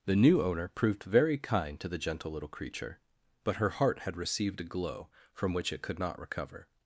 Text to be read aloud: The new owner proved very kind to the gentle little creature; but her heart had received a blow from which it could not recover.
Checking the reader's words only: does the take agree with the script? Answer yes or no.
no